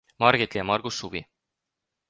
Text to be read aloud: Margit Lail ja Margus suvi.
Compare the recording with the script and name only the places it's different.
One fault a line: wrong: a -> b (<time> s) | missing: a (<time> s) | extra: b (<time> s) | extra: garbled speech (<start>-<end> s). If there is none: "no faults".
missing: Lail (0.6 s)